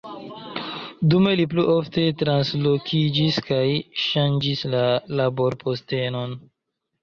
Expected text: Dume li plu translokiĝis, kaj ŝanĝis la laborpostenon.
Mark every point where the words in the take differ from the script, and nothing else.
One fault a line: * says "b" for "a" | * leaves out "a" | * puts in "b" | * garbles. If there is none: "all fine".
* puts in "ofte"